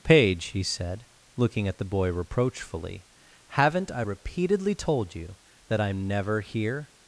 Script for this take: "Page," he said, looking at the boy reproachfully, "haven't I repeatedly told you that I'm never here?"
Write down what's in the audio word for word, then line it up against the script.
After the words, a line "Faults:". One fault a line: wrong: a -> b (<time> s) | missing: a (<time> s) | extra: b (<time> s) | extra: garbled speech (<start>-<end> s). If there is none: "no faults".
"Page," he said, looking at the boy reproachfully, "haven't I repeatedly told you that I'm never here?"
Faults:
no faults